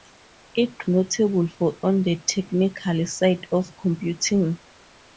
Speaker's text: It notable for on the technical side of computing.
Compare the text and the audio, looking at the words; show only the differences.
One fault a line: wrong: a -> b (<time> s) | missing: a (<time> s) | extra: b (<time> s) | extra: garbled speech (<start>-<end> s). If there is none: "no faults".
no faults